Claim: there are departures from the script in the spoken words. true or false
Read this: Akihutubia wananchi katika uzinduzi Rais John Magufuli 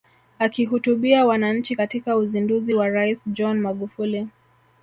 true